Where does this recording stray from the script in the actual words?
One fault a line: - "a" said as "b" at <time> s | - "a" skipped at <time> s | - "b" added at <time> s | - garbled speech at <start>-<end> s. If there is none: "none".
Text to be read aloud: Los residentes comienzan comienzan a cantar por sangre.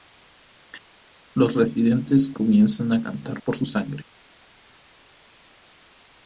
- "comienzan" skipped at 2.9 s
- "su" added at 3.5 s